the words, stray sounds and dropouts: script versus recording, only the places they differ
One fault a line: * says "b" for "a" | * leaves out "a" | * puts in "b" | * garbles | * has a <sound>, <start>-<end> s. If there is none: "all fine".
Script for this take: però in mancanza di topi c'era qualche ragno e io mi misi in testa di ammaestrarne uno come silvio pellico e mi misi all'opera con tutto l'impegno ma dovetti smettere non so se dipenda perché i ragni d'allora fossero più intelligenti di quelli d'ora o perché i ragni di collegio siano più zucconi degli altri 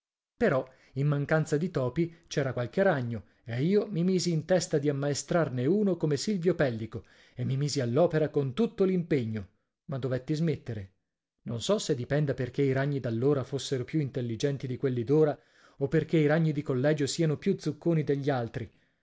all fine